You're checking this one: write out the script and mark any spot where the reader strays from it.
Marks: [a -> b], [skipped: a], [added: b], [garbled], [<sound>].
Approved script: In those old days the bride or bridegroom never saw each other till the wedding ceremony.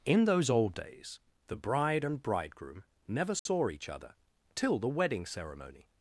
In those old days the bride [or -> and] bridegroom never saw [dropout] each other till the wedding ceremony.